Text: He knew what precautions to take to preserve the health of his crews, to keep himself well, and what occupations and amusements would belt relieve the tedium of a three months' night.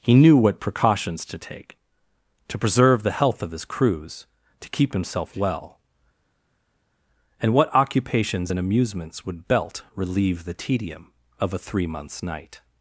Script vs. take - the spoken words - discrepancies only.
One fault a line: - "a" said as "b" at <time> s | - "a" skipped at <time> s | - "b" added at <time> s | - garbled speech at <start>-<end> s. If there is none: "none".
none